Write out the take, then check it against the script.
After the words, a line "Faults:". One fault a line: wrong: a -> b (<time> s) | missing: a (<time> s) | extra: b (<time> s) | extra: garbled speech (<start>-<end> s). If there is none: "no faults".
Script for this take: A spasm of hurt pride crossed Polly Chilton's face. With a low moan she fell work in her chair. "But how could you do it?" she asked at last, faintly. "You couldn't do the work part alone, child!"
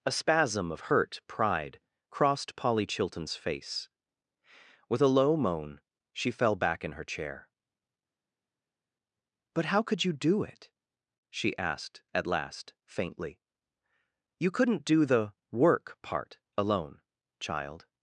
A spasm of hurt pride crossed Polly Chilton's face. With a low moan she fell back in her chair. "But how could you do it?" she asked at last, faintly. "You couldn't do the work part alone, child!"
Faults:
wrong: work -> back (6.5 s)